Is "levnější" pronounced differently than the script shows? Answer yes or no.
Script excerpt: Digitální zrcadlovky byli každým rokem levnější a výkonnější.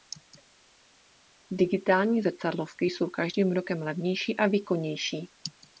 no